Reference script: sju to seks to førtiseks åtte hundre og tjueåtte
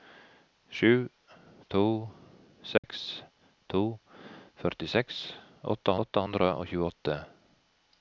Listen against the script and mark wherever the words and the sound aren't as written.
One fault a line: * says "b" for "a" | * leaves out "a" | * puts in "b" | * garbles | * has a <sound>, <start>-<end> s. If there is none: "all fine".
* has a dropout, 2.8-2.8 s
* puts in "åtte"